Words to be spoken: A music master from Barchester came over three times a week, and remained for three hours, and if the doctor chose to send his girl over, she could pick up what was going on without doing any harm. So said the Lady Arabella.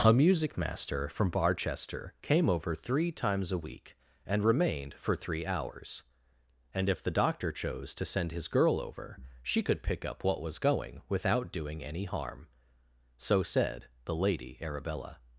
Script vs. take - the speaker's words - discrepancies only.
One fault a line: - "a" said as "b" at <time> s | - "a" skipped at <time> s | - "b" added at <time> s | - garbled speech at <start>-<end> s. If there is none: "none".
- "on" skipped at 11.0 s